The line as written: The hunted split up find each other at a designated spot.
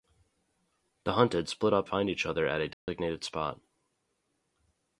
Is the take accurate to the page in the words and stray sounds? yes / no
no